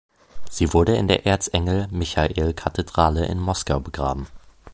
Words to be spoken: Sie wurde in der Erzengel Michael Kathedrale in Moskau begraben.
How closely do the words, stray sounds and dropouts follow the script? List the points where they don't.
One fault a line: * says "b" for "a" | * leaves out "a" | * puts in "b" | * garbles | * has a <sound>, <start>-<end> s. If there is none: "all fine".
all fine